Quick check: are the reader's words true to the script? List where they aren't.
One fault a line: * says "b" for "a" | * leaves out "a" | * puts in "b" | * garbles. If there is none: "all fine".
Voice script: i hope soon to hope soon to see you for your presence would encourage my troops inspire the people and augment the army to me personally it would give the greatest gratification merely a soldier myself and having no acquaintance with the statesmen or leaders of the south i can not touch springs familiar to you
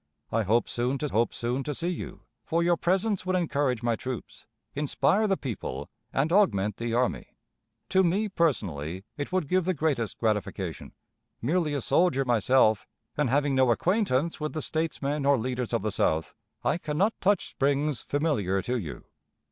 all fine